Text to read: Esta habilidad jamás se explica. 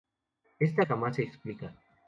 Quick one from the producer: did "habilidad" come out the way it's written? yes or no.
no